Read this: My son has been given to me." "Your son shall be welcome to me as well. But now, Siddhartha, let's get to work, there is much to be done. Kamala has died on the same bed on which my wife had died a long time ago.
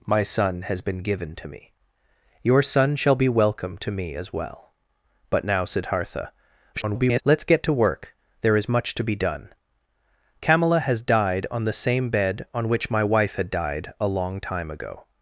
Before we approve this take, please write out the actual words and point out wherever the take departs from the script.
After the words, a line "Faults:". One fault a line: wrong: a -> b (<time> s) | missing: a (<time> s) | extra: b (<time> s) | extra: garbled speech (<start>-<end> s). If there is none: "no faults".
My son has been given to me." "Your son shall be welcome to me as well. But now, Siddhartha, [garbled] let's get to work, there is much to be done. Kamala has died on the same bed on which my wife had died a long time ago.
Faults:
extra: garbled speech (6.7-7.2 s)